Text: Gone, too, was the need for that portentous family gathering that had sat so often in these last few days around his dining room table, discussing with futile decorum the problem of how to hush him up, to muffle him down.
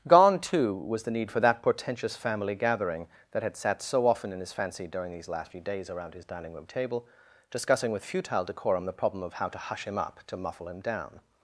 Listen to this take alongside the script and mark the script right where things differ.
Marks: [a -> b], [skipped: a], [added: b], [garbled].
Gone, too, was the need for that portentous family gathering that had sat so often in [added: his fancy during] these last few days around his dining room table, discussing with futile decorum the problem of how to hush him up, to muffle him down.